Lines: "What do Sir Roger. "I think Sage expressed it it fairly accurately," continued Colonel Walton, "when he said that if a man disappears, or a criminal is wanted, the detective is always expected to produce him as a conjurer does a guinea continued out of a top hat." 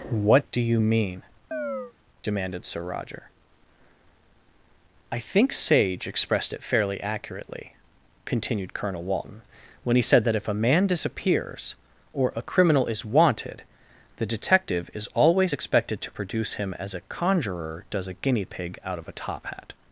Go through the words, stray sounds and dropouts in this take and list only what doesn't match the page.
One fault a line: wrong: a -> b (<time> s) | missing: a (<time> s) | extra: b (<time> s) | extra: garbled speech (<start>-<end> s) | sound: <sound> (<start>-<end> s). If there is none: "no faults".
extra: you mean demanded (0.6 s)
sound: chirp (1.5-1.9 s)
missing: it (6.6 s)
wrong: continued -> pig (18.5 s)